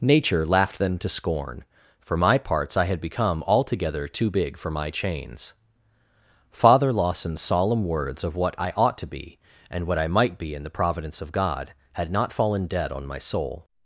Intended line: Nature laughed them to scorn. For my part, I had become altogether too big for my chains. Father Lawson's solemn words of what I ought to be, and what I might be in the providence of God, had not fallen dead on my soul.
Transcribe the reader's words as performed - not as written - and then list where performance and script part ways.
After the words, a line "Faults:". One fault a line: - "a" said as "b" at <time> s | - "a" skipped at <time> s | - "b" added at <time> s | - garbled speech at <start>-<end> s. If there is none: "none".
Nature laughed them to scorn. For my parts, I had become altogether too big for my chains. Father Lawson's solemn words of what I ought to be, and what I might be in the providence of God, had not fallen dead on my soul.
Faults:
- "part" said as "parts" at 2.4 s